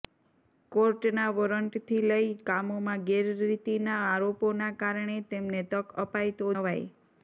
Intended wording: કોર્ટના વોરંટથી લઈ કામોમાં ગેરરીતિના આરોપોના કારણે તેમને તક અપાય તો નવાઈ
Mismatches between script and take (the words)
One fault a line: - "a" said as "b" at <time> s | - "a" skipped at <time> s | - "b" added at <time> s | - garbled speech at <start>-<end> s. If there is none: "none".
none